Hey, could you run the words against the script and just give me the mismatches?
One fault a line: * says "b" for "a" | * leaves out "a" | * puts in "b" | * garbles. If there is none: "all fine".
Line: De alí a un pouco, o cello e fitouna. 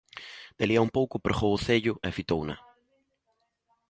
* puts in "pregou"